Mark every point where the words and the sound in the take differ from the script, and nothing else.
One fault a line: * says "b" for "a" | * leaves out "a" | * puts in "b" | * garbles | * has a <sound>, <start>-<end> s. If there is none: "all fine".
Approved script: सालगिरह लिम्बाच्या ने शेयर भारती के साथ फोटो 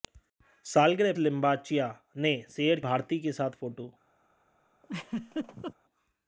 * has a laugh, 4.8-5.7 s